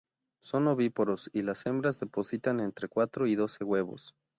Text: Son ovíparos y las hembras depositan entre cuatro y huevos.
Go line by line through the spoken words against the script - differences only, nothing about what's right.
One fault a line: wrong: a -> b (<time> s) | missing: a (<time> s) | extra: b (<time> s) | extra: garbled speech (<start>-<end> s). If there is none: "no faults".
extra: doce (3.3 s)